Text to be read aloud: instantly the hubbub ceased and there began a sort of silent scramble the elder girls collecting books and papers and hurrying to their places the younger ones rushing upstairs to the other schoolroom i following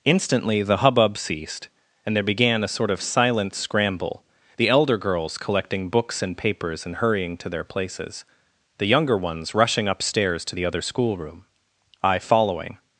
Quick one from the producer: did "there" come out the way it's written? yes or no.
yes